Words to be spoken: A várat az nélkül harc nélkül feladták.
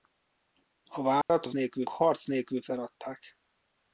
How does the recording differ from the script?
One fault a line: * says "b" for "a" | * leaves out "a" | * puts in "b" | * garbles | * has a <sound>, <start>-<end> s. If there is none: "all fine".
* has a dropout, 1.2-1.3 s